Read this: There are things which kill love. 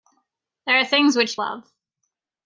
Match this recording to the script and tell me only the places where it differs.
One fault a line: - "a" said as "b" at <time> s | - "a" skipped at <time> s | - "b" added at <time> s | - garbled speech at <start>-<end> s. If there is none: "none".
- "kill" skipped at 1.4 s